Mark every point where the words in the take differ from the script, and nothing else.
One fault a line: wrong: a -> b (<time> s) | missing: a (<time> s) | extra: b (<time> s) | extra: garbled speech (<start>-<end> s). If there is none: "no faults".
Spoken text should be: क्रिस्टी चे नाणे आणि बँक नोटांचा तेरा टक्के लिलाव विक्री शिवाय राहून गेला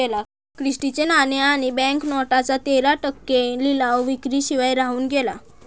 no faults